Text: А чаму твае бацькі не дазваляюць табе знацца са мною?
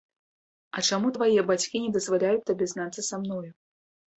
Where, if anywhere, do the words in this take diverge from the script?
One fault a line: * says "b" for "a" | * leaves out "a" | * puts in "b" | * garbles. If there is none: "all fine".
all fine